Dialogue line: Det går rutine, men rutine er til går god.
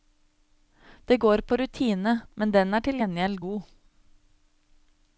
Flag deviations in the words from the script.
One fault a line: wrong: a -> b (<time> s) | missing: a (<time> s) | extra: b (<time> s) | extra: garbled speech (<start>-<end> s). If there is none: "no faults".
extra: på (1.4 s)
wrong: rutine -> den (2.6 s)
wrong: går -> gjengjeld (3.0 s)